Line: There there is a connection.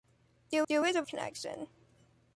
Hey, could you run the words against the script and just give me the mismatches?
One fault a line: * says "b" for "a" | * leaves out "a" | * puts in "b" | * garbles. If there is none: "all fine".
all fine